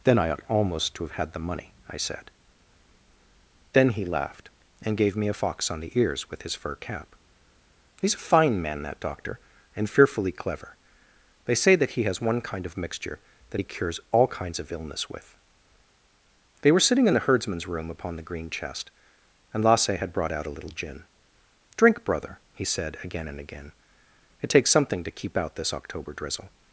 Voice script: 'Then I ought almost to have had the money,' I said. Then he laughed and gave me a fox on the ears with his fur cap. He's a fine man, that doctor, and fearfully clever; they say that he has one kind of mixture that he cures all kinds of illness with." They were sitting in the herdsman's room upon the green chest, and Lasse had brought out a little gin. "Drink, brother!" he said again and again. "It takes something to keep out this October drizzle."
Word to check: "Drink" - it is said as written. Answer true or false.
true